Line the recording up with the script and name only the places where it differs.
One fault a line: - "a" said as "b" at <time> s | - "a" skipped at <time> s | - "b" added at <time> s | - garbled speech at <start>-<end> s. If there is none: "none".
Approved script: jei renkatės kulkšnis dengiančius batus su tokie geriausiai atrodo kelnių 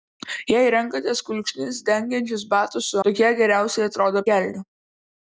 none